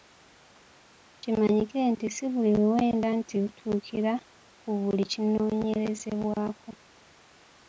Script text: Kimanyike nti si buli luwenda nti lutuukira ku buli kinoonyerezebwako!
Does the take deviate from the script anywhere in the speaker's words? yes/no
no